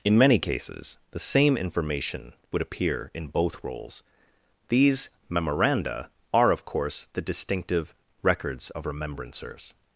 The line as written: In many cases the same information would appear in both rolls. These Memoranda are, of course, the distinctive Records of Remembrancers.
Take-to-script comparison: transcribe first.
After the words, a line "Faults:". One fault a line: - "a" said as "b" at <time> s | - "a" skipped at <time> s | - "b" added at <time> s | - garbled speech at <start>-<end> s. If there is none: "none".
In many cases the same information would appear in both rolls. These Memoranda are, of course, the distinctive Records of Remembrancers.
Faults:
none